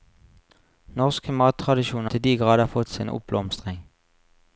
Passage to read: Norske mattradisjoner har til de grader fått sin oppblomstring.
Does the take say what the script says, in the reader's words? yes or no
no